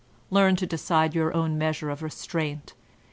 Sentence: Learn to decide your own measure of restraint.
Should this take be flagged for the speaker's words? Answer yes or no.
no